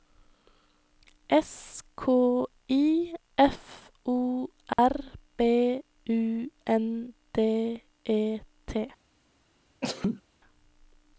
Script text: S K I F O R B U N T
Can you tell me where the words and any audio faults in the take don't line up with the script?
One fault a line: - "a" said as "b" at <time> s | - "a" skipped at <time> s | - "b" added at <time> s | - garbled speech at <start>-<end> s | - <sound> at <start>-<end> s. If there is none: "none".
- dropout at 4.7-4.8 s
- "D E" added at 7.3 s
- sneeze at 9.8-10.2 s